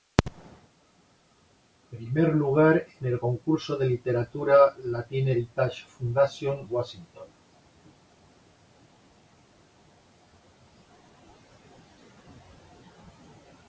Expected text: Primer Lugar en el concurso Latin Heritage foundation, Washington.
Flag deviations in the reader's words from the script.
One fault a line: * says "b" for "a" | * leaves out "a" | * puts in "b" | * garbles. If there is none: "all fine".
* puts in "de literatura"